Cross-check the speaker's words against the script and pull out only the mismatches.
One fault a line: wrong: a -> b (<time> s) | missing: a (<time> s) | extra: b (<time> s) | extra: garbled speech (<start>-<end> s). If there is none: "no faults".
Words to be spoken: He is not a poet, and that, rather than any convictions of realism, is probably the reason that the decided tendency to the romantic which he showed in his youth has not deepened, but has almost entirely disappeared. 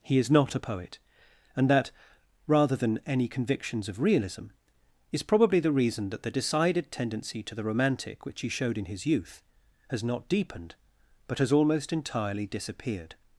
no faults